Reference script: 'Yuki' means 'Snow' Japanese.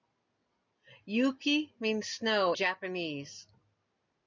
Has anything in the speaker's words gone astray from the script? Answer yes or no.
no